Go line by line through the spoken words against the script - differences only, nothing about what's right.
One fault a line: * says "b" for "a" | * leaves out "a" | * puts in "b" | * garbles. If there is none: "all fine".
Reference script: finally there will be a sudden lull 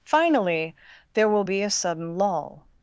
all fine